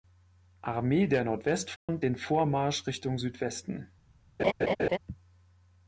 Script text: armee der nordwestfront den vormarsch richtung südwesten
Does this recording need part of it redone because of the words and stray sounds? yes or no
yes